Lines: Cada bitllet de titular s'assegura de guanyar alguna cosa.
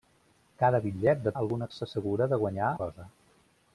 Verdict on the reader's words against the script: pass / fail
fail